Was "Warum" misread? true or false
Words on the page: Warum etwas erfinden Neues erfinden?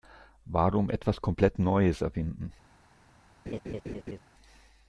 false